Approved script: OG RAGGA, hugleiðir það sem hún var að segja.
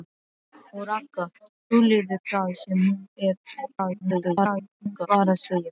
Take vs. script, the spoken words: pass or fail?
fail